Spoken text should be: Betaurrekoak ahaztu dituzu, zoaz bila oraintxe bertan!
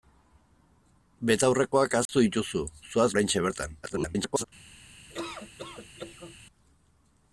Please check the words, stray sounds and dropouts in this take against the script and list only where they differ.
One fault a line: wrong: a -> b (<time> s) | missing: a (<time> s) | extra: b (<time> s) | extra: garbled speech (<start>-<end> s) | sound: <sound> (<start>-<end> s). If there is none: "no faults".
sound: dropout (2.1-2.1 s)
missing: bila (3.1 s)
extra: garbled speech (3.8-4.4 s)
sound: laugh (5.1-6.4 s)